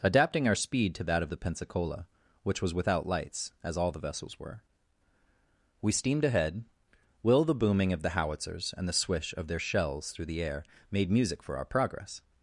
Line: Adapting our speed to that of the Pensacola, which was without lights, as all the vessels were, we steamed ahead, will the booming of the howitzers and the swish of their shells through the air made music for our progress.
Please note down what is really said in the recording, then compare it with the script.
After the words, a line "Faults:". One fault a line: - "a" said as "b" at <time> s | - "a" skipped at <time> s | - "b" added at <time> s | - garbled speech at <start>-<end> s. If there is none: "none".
Adapting our speed to that of the Pensacola, which was without lights, as all the vessels were, we steamed ahead, will the booming of the howitzers and the swish of their shells through the air made music for our progress.
Faults:
none